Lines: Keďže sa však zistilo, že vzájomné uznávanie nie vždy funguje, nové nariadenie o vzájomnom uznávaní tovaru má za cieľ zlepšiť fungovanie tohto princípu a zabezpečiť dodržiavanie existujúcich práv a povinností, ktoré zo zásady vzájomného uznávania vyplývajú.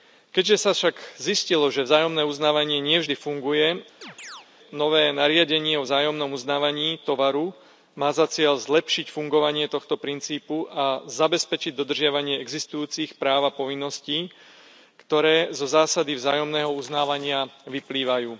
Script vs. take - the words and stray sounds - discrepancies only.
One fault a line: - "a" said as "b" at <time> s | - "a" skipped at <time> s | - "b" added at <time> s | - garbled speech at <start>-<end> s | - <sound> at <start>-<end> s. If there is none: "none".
- chirp at 4.0-4.5 s